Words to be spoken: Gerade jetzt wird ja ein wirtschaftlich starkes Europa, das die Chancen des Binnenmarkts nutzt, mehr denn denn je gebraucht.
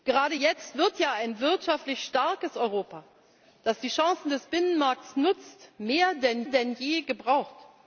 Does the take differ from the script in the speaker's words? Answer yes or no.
no